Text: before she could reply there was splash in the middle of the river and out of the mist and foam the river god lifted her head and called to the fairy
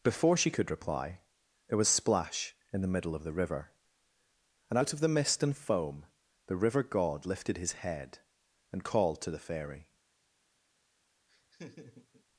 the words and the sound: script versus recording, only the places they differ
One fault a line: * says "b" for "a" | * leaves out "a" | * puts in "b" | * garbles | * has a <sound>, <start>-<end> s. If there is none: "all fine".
* says "his" for "her"
* has a laugh, 11.3-12.2 s